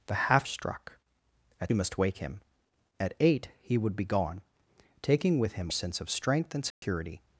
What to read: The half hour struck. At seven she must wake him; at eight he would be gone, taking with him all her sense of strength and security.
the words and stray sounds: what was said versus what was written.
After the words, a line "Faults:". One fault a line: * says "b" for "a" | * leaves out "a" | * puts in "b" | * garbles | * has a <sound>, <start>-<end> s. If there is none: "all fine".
The half struck. At must wake him; at eight he would be gone, taking with him sense of strength and security.
Faults:
* leaves out "hour"
* leaves out "seven she"
* leaves out "all her"
* has a dropout, 6.7-6.8 s